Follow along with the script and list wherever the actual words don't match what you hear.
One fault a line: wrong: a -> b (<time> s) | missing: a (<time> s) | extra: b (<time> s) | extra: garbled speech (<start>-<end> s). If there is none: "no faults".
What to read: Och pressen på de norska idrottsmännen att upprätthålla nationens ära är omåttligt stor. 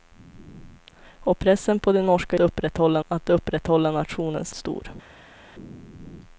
wrong: idrottsmännen -> upprätthålla (2.4 s)
missing: ära är omåttligt (4.5 s)